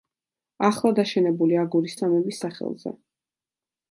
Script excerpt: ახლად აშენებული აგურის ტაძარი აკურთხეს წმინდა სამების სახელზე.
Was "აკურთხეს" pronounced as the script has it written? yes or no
no